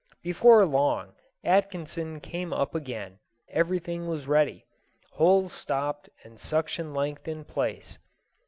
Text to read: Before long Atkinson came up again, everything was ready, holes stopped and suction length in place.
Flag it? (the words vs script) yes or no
no